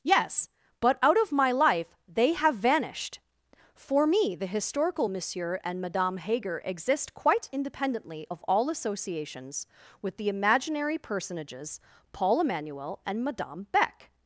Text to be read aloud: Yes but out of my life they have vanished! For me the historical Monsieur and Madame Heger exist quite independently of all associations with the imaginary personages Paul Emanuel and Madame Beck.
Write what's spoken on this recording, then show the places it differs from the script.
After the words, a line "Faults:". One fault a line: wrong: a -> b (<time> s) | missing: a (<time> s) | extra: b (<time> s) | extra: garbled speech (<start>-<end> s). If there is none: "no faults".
Yes but out of my life they have vanished! For me the historical Monsieur and Madame Heger exist quite independently of all associations with the imaginary personages Paul Emanuel and Madame Beck.
Faults:
no faults